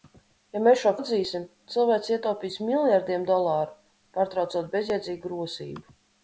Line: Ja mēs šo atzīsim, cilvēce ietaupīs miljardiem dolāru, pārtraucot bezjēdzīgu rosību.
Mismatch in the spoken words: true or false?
false